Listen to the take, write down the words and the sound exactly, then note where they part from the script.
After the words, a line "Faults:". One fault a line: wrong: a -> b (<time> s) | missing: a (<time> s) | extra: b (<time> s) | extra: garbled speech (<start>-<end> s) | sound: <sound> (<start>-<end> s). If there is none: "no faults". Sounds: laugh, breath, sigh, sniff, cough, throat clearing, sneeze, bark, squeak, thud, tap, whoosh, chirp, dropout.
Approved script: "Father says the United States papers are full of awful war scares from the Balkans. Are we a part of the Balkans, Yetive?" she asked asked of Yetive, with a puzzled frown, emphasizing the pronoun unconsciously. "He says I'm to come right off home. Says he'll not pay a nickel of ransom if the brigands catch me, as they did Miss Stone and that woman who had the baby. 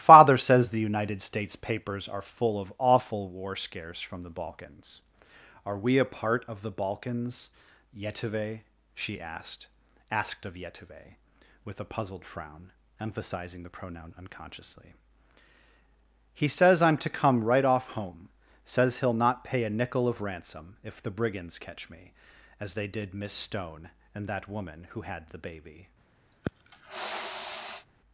"Father says the United States papers are full of awful war scares from the Balkans. Are we a part of the Balkans, Yetive?" she asked asked of Yetive, with a puzzled frown, emphasizing the pronoun unconsciously. "He says I'm to come right off home. Says he'll not pay a nickel of ransom if the brigands catch me, as they did Miss Stone and that woman who had the baby.
Faults:
sound: sniff (26.3-27.9 s)